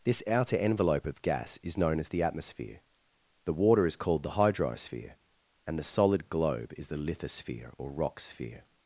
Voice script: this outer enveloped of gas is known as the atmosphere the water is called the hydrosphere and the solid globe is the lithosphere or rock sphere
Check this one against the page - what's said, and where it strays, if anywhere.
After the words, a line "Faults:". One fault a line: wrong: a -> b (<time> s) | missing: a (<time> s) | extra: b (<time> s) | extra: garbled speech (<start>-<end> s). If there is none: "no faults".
this outer envelope of gas is known as the atmosphere the water is called the hydrosphere and the solid globe is the lithosphere or rock sphere
Faults:
wrong: enveloped -> envelope (0.6 s)